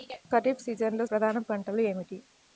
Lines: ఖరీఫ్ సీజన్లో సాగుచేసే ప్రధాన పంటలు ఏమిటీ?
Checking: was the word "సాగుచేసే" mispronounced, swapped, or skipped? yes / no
yes